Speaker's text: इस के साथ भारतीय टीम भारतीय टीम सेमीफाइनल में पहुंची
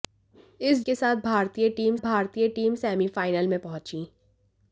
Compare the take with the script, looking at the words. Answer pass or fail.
pass